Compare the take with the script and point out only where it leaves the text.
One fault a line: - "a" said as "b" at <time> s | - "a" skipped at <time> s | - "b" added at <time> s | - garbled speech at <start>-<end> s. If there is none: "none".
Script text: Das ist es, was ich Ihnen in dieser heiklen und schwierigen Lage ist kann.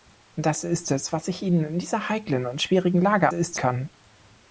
none